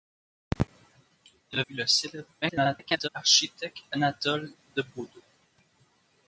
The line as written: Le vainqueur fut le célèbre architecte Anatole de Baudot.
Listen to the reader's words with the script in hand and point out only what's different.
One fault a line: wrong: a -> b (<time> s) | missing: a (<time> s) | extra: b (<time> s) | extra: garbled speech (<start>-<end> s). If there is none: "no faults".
missing: vainqueur (1.6 s)
extra: garbled speech (2.4-3.1 s)